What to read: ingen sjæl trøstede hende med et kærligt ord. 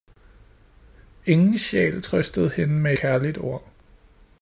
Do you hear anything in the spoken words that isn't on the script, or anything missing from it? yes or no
yes